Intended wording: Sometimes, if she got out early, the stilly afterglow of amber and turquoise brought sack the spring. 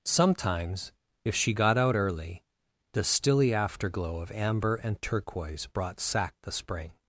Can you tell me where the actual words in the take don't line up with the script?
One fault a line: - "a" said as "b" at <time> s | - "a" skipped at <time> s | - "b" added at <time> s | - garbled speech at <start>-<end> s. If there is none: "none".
none